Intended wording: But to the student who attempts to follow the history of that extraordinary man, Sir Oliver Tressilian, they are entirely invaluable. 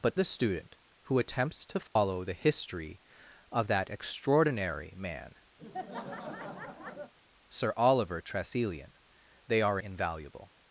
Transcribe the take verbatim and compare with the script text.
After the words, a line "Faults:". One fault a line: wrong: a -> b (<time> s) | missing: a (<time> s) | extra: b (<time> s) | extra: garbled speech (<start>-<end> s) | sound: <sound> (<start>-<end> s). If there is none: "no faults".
But the student who attempts to follow the history of that extraordinary man, Sir Oliver Tressilian, they are invaluable.
Faults:
missing: to (0.2 s)
sound: dropout (1.9-2.0 s)
sound: laugh (5.6-7.1 s)
missing: entirely (9.8 s)